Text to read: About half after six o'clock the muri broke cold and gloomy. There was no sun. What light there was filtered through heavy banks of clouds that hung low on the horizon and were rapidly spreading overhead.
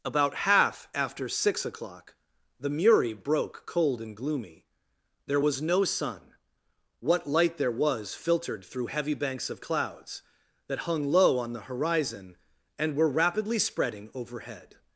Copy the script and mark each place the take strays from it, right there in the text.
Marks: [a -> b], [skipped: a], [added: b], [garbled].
About half after six o'clock the muri broke cold and gloomy. There was no sun. What light there was filtered through heavy banks of clouds that hung low on the horizon and were rapidly spreading overhead.